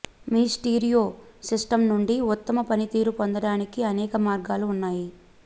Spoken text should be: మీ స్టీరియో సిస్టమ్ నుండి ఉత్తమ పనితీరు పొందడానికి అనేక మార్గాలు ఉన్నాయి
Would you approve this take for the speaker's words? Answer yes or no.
yes